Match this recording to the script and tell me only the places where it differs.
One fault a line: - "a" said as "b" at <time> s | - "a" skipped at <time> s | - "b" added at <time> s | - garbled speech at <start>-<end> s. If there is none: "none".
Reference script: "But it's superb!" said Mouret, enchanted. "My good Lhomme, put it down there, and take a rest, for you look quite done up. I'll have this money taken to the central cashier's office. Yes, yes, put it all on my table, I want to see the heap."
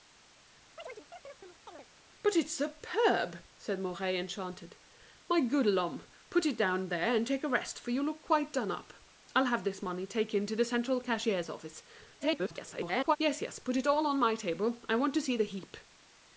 - garbled speech at 12.2-13.2 s